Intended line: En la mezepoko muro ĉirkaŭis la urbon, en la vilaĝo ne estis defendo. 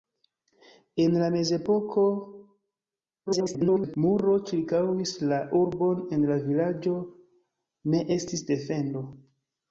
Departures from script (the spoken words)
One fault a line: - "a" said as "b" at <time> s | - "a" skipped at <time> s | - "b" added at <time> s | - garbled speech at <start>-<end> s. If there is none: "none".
- garbled speech at 3.3-4.0 s